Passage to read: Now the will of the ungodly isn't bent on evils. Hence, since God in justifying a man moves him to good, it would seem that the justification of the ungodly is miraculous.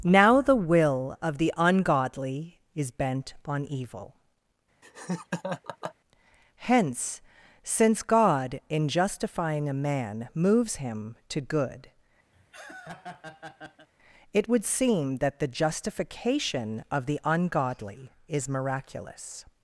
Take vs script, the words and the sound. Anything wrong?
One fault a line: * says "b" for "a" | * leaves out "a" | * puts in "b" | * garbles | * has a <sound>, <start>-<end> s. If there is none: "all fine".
* says "is" for "isn't"
* says "evil" for "evils"
* has a laugh, 4.8-6.0 s
* has a laugh, 12.3-13.9 s